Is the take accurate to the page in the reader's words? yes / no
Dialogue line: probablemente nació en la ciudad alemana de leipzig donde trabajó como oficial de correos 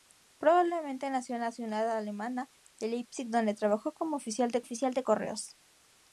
no